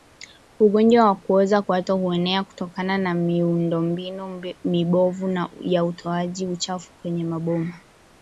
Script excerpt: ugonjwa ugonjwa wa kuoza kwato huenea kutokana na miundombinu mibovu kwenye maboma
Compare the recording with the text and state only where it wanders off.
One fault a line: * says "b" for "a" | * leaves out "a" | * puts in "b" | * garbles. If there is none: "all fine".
* leaves out "ugonjwa"
* puts in "ya utoaji uchafu"